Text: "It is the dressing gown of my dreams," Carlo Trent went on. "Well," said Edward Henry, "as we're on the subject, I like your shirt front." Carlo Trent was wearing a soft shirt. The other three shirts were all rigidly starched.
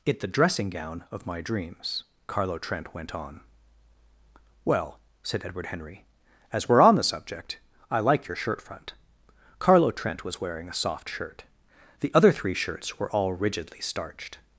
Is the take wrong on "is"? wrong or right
wrong